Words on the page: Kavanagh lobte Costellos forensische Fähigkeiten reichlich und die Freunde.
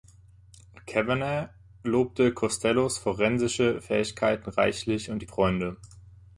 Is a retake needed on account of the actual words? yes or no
no